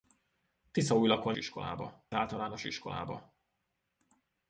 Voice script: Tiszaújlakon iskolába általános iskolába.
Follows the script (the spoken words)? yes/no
yes